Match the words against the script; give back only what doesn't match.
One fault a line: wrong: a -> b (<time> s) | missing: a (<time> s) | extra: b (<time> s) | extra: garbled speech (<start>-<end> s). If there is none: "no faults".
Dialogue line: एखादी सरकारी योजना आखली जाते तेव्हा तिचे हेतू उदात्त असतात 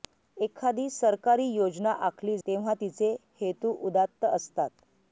missing: जाते (2.4 s)